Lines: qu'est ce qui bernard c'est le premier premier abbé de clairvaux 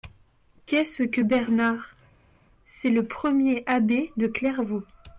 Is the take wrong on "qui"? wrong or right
wrong